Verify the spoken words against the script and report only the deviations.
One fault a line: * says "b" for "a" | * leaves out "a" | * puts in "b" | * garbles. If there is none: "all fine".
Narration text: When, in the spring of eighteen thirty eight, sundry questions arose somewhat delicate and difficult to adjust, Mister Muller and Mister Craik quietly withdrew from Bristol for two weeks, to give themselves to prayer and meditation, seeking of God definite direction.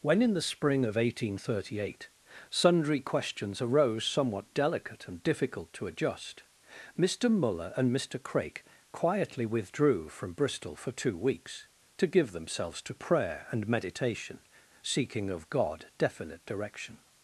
all fine